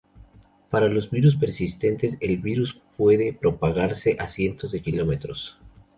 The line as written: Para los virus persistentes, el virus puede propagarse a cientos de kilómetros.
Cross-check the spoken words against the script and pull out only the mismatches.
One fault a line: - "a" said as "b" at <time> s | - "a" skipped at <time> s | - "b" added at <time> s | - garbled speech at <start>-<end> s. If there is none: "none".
none